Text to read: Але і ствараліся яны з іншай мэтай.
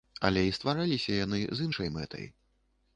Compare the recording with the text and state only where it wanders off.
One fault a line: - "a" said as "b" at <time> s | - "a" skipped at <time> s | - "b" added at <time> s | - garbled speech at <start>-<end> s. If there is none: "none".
none